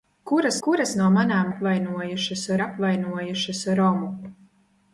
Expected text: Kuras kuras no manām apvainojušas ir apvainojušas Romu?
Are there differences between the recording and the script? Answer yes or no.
no